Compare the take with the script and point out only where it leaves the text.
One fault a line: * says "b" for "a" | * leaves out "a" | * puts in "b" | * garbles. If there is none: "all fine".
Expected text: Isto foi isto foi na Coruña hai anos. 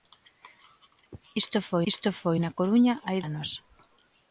all fine